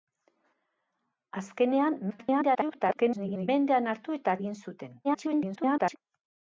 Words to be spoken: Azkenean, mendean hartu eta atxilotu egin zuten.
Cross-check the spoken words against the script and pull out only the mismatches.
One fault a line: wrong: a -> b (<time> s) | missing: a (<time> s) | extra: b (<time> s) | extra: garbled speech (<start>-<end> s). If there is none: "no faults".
extra: garbled speech (2.1-3.5 s)
missing: atxilotu (4.4 s)
extra: garbled speech (5.0-6.0 s)